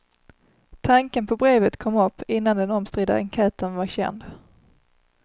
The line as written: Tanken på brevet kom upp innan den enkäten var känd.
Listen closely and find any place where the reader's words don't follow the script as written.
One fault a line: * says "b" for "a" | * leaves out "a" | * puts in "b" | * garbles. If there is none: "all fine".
* puts in "omstridda"